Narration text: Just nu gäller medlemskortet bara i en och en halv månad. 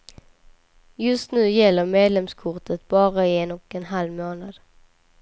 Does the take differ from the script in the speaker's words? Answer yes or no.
no